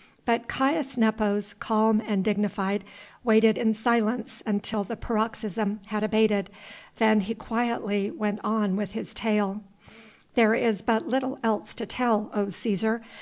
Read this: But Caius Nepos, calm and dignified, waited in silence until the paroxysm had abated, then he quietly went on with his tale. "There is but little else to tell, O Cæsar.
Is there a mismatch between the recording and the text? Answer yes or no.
no